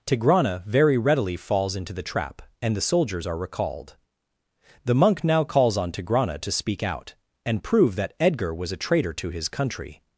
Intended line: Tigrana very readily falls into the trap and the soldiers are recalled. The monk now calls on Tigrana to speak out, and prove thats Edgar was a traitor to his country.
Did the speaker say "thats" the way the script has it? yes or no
no